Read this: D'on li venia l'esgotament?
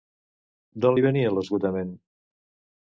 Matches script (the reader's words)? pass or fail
pass